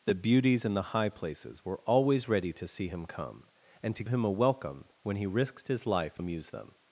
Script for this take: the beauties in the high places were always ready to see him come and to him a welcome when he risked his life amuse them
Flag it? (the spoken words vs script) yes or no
no